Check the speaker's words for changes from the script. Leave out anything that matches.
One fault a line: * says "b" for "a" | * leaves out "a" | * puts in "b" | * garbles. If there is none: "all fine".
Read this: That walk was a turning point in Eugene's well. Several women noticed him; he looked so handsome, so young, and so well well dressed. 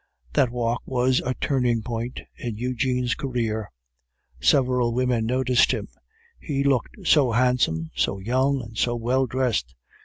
* says "career" for "well"
* leaves out "well"